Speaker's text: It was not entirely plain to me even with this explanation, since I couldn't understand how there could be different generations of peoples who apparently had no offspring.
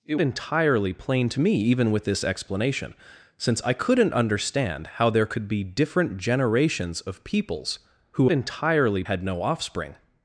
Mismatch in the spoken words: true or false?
true